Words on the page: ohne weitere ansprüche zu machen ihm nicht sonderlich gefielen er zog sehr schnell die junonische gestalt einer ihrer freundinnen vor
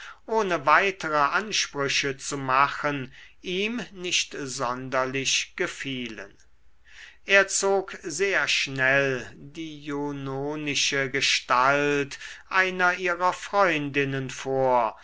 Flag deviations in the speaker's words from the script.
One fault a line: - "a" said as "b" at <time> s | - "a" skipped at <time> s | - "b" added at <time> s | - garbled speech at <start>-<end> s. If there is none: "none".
none